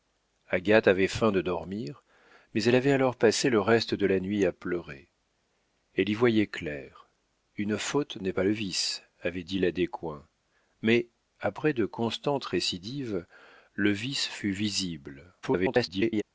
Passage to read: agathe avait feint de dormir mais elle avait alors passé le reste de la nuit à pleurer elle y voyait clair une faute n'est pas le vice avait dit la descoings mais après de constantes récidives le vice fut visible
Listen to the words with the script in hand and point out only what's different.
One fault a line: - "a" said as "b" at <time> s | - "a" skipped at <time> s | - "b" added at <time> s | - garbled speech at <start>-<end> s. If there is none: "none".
- garbled speech at 15.4-16.2 s